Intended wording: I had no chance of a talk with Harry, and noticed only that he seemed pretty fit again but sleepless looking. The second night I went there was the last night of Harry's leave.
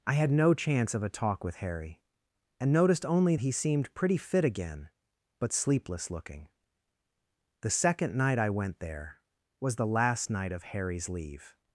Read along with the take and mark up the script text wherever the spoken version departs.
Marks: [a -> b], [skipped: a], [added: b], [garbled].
I had no chance of a talk with Harry, and noticed only [skipped: that] he seemed pretty fit again but sleepless looking. The second night I went there was the last night of Harry's leave.